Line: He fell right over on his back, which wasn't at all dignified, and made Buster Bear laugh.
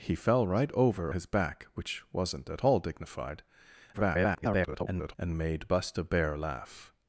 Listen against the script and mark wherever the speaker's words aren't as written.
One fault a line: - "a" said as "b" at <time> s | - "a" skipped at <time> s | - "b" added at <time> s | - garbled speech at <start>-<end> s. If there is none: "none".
- "on" skipped at 1.1 s
- garbled speech at 3.9-5.1 s